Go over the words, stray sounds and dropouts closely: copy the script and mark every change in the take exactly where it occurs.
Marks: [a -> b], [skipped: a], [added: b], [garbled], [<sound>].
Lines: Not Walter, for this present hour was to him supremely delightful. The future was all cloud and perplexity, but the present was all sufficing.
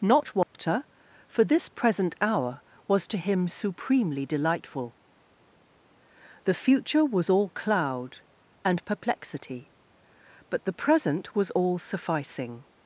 Not Walter, [dropout] for this present hour was to him supremely delightful. The future was all cloud and perplexity, but the present was all sufficing.